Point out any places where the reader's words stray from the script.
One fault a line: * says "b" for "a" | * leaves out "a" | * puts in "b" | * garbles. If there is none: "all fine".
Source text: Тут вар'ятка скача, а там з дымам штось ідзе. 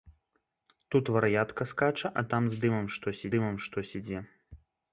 * puts in "дымам штось"